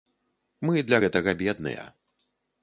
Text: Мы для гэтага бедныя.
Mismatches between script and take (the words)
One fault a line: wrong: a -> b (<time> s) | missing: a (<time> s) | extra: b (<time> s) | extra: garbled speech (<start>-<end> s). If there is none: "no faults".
no faults